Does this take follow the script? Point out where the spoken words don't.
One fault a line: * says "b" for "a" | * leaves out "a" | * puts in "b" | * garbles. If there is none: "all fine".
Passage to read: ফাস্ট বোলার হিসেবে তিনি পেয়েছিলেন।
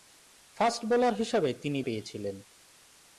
all fine